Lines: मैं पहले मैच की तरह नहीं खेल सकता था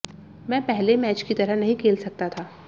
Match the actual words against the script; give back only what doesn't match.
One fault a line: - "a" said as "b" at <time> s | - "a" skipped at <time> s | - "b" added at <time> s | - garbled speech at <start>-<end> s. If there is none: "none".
none